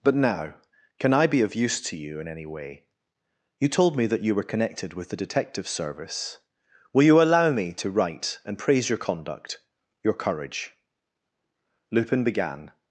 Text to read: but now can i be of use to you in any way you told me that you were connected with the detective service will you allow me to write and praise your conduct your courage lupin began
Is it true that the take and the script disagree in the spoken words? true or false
false